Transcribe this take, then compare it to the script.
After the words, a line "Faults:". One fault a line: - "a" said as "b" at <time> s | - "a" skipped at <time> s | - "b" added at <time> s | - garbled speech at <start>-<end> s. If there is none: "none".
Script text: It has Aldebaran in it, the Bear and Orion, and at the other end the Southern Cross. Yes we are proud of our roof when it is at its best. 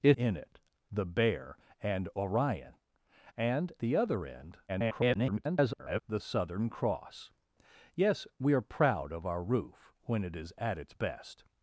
It in it, the Bear and Orion, and the other end [garbled] the Southern Cross. Yes we are proud of our roof when it is at its best.
Faults:
- "has Aldebaran" skipped at 0.1 s
- "at" skipped at 3.7 s
- garbled speech at 4.7-6.0 s